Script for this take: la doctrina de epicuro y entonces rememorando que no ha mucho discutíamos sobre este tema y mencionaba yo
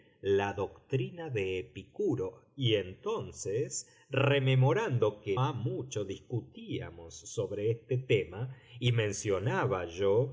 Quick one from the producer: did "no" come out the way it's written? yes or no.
no